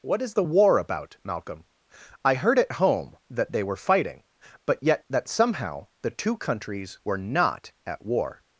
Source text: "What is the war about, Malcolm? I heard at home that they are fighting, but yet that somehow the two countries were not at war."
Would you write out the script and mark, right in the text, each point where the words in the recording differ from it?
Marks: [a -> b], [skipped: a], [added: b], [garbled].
"What is the war about, Malcolm? I heard at home that they [are -> were] fighting, but yet that somehow the two countries were not at war."